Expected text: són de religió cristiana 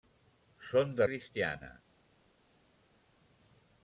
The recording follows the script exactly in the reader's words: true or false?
false